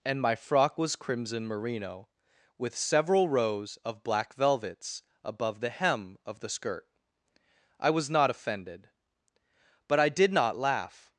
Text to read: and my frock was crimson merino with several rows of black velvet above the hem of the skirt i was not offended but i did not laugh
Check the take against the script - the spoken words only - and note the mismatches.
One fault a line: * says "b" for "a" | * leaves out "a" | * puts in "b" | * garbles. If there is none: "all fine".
* says "velvets" for "velvet"